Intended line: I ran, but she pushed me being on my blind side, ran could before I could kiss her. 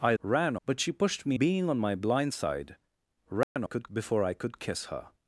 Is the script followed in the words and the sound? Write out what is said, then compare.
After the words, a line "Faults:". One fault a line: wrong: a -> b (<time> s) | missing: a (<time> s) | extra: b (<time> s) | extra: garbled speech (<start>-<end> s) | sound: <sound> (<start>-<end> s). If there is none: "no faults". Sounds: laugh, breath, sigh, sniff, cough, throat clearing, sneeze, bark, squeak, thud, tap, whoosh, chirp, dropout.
I ran, but she pushed me being on my blind side, ran could before I could kiss her.
Faults:
sound: dropout (3.4-3.6 s)